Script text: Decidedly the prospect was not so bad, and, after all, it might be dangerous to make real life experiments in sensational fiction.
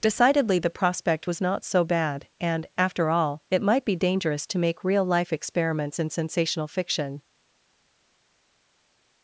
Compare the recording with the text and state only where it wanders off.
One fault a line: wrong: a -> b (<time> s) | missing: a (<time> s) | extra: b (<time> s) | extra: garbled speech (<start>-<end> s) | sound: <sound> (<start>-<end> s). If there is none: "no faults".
no faults